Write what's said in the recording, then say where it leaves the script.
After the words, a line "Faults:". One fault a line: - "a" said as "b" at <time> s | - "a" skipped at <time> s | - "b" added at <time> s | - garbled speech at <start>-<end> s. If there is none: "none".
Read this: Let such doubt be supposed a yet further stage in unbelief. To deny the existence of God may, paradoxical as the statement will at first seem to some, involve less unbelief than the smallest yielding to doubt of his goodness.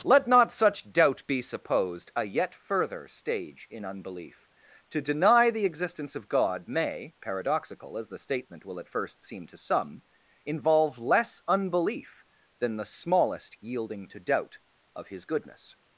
Let not such doubt be supposed a yet further stage in unbelief. To deny the existence of God may, paradoxical as the statement will at first seem to some, involve less unbelief than the smallest yielding to doubt of his goodness.
Faults:
- "not" added at 0.3 s